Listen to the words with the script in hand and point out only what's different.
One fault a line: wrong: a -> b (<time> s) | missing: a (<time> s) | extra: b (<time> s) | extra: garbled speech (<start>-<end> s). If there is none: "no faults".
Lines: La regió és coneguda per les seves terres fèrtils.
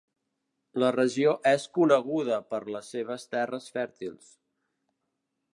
no faults